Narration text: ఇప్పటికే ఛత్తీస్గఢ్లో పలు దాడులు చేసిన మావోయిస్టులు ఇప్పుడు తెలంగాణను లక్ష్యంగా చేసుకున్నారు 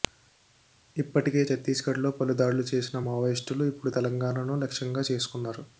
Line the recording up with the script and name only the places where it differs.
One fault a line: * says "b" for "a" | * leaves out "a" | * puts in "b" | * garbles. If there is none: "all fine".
all fine